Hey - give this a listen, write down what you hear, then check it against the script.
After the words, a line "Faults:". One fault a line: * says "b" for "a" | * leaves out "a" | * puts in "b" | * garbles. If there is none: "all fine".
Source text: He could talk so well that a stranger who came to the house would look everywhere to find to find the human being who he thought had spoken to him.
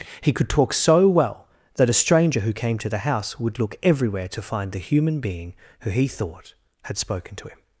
He could talk so well that a stranger who came to the house would look everywhere to find the human being who he thought had spoken to him.
Faults:
* leaves out "to find"